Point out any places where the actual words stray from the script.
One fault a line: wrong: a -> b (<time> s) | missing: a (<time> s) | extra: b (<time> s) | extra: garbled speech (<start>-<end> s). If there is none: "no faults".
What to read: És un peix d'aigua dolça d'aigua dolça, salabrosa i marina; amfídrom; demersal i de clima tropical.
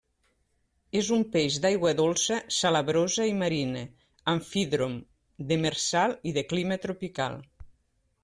missing: d'aigua dolça (2.4 s)